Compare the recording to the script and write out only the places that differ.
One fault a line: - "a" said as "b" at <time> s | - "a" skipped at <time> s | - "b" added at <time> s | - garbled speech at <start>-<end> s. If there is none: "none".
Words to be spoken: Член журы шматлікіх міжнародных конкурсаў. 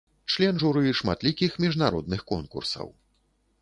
none